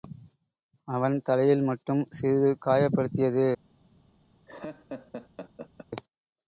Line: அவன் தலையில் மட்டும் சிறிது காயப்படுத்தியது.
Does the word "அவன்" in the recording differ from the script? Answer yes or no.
no